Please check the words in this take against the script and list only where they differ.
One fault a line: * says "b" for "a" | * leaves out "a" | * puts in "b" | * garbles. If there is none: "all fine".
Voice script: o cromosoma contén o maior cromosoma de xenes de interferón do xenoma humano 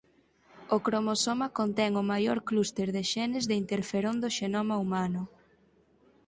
* says "clúster" for "cromosoma"